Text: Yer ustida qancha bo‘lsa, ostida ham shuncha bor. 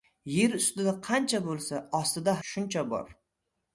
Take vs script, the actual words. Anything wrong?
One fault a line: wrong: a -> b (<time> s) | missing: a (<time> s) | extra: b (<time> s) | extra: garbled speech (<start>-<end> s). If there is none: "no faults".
missing: ham (2.4 s)